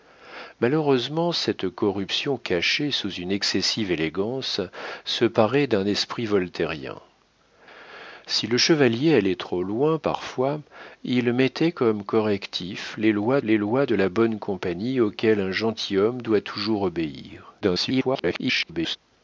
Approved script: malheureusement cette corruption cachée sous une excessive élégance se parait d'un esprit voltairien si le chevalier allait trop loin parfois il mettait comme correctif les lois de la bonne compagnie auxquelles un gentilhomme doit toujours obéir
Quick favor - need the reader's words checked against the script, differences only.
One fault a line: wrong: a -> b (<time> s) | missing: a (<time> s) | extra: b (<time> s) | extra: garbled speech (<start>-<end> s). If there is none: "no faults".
extra: les lois (13.4 s)
extra: garbled speech (17.6-19.0 s)